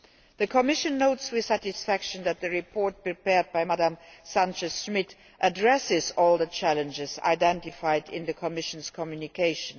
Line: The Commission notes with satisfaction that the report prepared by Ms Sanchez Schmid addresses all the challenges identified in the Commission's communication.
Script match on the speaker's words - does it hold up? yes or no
yes